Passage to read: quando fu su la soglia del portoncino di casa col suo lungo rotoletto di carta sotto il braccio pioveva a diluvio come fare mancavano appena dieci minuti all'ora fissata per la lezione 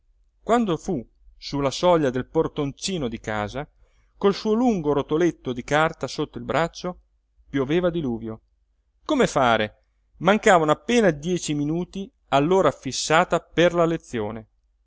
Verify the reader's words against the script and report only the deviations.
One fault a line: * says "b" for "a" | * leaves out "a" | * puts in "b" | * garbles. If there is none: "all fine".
all fine